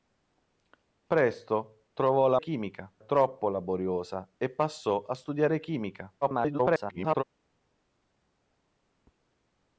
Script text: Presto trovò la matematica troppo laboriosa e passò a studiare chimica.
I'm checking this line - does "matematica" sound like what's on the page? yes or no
no